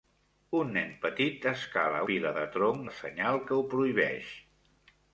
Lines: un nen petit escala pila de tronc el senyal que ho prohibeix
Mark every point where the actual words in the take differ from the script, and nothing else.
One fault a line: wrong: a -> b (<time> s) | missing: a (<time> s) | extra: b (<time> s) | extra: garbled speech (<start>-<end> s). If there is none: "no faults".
no faults